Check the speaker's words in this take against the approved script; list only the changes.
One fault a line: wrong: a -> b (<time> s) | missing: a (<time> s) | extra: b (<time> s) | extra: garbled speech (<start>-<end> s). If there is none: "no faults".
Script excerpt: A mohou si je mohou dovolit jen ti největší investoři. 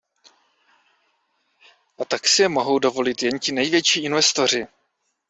wrong: mohou -> tak (2.0 s)